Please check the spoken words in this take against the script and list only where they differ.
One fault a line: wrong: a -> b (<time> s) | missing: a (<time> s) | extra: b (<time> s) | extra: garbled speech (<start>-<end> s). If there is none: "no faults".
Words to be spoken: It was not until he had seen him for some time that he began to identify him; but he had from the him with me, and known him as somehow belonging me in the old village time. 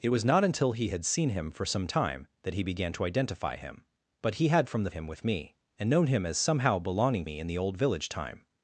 no faults